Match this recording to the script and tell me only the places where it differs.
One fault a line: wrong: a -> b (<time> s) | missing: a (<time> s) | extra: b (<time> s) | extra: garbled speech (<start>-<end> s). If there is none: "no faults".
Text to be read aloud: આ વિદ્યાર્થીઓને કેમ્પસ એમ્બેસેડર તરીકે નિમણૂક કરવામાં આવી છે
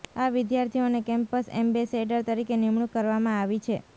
no faults